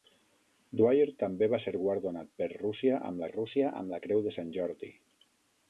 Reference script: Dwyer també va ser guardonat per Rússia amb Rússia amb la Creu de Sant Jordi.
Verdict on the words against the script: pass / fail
pass